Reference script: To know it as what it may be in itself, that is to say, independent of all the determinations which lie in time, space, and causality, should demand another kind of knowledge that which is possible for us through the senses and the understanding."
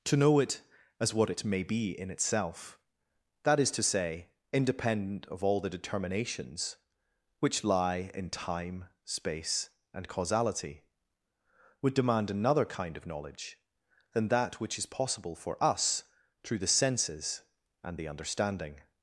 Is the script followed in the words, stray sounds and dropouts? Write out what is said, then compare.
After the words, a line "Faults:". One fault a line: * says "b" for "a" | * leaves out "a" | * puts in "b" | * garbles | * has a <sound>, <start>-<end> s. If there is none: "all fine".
To know it as what it may be in itself, that is to say, independent of all the determinations which lie in time, space, and causality, would demand another kind of knowledge than that which is possible for us through the senses and the understanding."
Faults:
* says "would" for "should"
* puts in "than"